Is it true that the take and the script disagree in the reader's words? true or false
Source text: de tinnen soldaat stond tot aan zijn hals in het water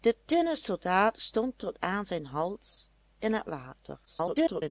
true